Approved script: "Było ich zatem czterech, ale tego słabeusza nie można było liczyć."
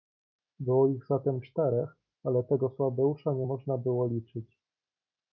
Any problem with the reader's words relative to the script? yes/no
no